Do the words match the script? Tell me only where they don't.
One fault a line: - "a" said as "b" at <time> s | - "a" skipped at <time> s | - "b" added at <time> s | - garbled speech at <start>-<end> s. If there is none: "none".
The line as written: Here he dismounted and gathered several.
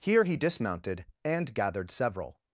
none